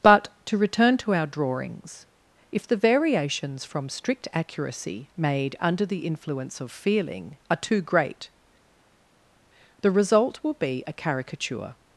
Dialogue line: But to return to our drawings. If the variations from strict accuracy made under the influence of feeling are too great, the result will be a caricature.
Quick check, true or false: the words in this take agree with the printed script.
true